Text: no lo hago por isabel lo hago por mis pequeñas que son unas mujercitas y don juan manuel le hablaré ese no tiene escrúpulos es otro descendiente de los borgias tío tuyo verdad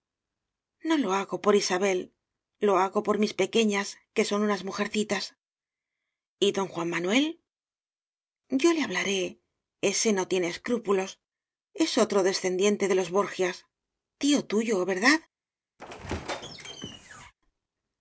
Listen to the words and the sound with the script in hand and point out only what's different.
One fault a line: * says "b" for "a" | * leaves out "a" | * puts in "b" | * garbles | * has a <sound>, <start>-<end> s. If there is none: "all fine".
* puts in "yo"
* has a squeak, 15.8-17.3 s